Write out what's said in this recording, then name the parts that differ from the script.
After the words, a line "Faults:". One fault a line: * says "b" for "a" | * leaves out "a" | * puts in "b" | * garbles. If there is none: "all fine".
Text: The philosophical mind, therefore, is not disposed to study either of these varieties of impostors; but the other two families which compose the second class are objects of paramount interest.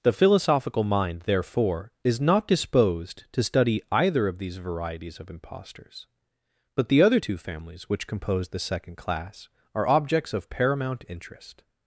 The philosophical mind, therefore, is not disposed to study either of these varieties of impostors; but the other two families which compose the second class are objects of paramount interest.
Faults:
all fine